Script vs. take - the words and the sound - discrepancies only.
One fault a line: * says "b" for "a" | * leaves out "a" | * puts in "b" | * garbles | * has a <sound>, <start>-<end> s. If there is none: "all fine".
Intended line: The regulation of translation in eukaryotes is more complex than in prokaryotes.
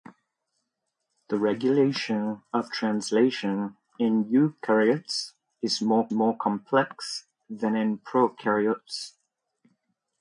* puts in "more"